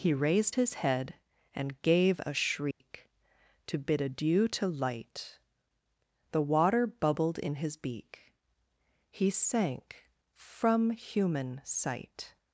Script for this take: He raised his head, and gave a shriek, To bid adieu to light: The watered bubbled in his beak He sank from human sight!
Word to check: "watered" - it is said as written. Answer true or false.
false